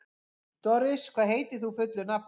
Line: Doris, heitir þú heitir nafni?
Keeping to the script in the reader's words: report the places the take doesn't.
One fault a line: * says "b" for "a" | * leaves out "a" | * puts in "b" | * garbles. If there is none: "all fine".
* puts in "hvað"
* says "fullu" for "heitir"